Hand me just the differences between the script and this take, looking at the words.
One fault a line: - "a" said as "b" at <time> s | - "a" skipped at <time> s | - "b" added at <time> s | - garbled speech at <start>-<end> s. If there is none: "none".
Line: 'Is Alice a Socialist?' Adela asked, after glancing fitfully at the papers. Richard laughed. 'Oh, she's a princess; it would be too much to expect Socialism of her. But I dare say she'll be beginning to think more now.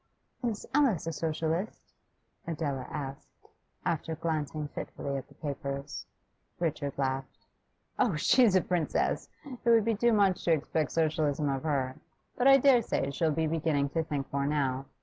none